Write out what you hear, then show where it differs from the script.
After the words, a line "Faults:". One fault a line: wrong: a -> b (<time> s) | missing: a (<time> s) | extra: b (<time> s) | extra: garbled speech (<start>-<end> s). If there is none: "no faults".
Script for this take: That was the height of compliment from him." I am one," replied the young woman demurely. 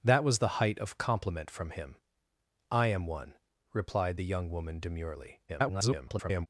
That was the height of compliment from him." I am one," replied the young woman demurely. [garbled]
Faults:
extra: garbled speech (5.5-6.5 s)